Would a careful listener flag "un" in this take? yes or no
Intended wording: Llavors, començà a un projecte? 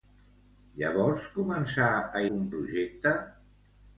no